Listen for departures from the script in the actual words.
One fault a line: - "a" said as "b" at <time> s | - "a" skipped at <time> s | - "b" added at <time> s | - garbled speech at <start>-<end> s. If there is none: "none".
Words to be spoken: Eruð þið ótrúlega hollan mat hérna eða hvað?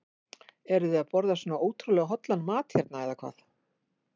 - "að borða svona" added at 1.0 s